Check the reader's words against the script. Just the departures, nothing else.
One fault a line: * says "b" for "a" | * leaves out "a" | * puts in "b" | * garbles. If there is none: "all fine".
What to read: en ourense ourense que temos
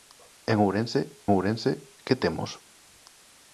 all fine